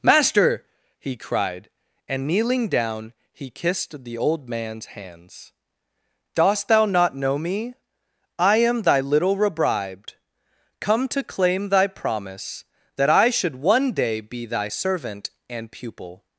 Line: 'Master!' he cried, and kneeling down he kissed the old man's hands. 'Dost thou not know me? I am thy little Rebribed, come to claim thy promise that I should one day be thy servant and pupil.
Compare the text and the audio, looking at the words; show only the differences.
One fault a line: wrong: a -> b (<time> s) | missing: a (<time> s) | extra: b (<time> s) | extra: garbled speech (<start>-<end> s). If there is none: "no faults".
no faults